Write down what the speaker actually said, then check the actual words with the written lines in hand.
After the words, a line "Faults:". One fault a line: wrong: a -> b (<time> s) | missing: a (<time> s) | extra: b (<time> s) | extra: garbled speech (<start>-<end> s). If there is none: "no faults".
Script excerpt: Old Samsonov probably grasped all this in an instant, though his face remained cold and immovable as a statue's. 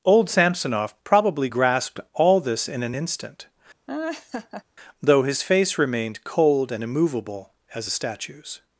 Old Samsonov probably grasped all this in an instant, though his face remained cold and immovable as a statue's.
Faults:
no faults